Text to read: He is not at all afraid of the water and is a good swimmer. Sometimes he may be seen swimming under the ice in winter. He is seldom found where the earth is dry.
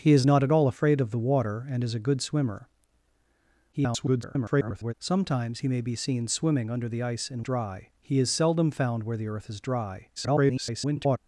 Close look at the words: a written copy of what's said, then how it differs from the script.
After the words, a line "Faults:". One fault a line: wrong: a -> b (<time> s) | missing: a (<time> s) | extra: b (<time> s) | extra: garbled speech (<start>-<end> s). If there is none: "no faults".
He is not at all afraid of the water and is a good swimmer. [garbled] Sometimes he may be seen swimming under the ice in dry. He is seldom found where the earth is dry. [garbled]
Faults:
extra: garbled speech (3.7-4.9 s)
wrong: winter -> dry (7.4 s)
extra: garbled speech (10.2-11.2 s)